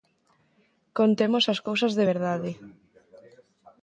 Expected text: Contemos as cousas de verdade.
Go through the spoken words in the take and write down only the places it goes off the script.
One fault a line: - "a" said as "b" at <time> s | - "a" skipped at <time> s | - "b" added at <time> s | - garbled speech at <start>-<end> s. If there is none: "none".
none